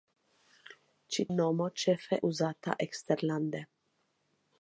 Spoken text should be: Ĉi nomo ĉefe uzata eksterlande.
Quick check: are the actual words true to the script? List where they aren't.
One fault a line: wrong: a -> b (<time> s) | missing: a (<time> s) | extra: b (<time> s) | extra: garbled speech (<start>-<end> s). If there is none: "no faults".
no faults